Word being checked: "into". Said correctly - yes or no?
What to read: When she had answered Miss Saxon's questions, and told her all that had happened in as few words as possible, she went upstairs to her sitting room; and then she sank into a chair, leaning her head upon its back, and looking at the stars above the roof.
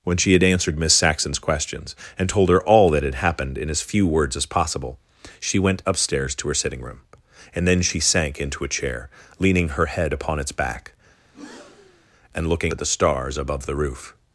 yes